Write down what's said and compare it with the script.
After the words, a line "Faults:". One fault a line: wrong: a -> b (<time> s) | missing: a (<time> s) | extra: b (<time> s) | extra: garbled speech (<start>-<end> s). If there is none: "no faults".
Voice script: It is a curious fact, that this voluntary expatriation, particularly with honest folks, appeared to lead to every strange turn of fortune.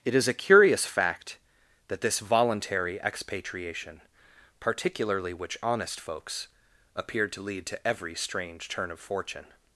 It is a curious fact, that this voluntary expatriation, particularly which honest folks, appeared to lead to every strange turn of fortune.
Faults:
wrong: with -> which (5.3 s)